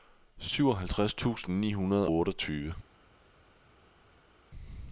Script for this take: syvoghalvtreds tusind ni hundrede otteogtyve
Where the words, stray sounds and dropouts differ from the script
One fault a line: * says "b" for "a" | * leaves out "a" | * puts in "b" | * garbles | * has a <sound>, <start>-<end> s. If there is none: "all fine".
all fine